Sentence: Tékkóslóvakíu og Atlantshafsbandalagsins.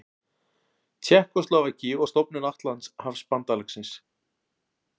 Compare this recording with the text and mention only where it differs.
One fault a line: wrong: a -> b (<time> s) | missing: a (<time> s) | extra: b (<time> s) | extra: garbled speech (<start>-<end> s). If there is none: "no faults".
extra: stofnun (2.1 s)